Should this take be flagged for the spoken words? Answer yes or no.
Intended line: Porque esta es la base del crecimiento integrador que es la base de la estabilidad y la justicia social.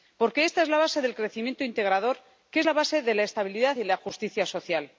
no